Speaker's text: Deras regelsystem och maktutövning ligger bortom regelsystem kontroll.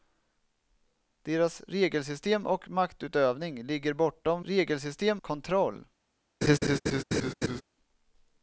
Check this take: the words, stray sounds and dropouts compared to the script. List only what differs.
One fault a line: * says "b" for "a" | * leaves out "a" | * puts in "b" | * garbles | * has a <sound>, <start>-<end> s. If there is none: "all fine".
* has a laugh, 6.4-7.6 s